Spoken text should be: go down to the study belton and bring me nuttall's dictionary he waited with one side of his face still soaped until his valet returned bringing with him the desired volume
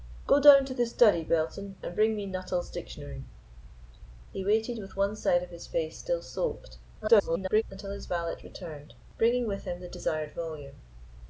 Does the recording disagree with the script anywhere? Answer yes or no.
yes